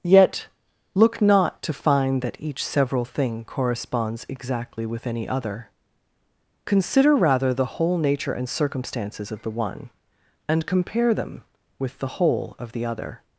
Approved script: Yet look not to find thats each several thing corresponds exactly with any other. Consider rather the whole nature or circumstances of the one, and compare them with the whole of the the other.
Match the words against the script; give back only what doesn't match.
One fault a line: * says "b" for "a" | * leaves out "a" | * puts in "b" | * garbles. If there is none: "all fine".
* says "that" for "thats"
* says "and" for "or"
* leaves out "the"